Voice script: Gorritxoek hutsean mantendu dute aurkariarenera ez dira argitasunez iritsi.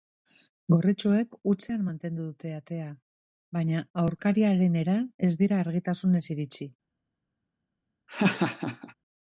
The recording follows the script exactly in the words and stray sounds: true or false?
false